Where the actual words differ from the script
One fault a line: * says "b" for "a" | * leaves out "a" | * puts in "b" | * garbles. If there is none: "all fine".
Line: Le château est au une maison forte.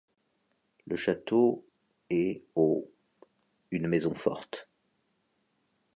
all fine